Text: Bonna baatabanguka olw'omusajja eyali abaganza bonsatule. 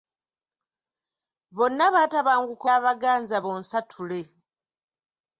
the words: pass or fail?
fail